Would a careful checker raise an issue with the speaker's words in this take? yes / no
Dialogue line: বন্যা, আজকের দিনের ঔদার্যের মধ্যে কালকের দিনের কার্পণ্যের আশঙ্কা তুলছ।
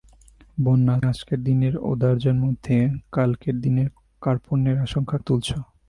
no